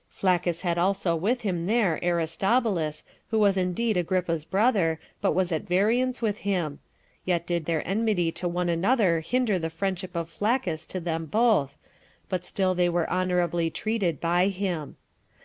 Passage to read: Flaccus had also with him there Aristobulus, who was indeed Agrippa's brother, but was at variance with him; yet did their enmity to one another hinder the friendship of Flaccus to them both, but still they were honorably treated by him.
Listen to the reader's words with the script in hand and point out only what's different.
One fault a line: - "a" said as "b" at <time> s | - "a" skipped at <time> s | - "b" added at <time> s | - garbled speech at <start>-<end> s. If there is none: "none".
none